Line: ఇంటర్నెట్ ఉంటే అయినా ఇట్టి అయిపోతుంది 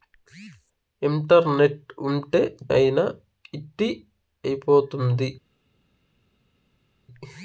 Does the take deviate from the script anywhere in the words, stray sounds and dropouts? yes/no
no